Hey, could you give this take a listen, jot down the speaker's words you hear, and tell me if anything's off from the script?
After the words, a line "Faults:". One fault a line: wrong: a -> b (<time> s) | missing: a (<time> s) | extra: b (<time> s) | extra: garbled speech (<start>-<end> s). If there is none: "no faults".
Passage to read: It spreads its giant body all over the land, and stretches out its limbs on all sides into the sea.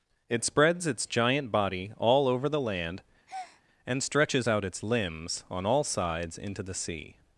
It spreads its giant body all over the land, and stretches out its limbs on all sides into the sea.
Faults:
no faults